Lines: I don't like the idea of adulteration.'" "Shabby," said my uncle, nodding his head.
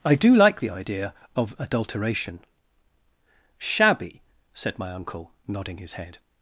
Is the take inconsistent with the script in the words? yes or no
yes